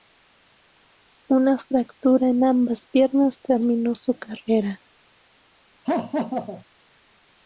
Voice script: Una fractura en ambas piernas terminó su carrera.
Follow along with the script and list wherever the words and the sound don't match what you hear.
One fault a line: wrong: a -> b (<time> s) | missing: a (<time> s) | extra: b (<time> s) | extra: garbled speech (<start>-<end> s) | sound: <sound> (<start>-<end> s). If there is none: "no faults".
sound: laugh (5.8-6.6 s)